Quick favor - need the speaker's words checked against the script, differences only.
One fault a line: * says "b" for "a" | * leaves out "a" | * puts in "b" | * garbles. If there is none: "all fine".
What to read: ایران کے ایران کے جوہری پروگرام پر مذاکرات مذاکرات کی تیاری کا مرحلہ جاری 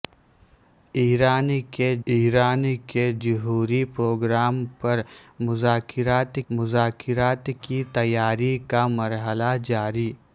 all fine